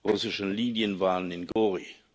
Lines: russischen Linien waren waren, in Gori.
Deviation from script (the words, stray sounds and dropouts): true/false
true